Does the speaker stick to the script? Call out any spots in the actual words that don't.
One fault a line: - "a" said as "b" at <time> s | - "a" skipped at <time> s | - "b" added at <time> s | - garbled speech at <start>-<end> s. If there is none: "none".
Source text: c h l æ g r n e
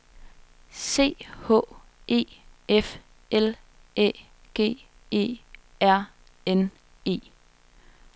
- "e f" added at 2.1 s
- "e" added at 5.1 s